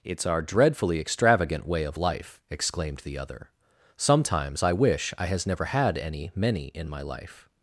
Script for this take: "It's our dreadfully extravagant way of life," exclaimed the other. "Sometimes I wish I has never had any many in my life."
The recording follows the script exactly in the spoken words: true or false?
true